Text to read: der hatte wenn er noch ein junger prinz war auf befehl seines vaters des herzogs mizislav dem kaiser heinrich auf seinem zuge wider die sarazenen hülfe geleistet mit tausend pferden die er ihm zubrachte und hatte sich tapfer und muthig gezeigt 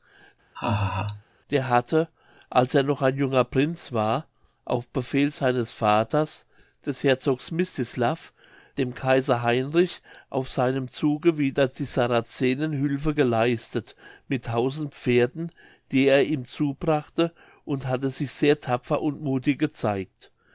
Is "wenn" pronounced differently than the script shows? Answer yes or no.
yes